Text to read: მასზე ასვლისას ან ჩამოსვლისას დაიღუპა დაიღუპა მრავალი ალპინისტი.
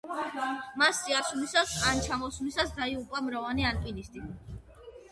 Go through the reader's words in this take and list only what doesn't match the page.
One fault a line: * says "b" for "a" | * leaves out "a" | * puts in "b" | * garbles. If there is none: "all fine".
* leaves out "დაიღუპა"